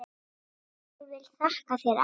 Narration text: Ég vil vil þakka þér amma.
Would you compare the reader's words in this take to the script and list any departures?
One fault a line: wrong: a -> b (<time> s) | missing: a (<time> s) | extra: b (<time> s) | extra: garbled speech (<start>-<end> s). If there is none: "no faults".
missing: vil (1.2 s)